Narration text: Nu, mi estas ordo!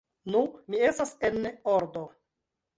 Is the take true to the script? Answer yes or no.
no